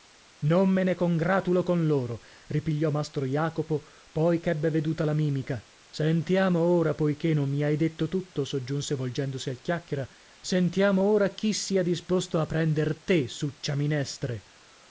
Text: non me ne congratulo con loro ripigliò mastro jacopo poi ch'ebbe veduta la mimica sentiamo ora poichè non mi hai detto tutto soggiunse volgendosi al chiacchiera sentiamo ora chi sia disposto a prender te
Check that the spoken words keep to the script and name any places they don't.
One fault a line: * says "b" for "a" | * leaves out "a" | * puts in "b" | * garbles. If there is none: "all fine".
all fine